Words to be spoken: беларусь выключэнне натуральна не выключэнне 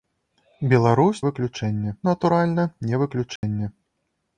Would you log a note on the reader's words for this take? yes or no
no